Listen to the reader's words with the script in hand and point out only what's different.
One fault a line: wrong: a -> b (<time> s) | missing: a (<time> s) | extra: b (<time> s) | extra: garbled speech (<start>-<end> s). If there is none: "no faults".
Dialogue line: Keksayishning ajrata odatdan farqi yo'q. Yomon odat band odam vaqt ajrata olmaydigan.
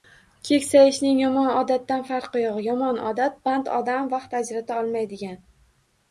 wrong: ajrata -> yomon (1.2 s)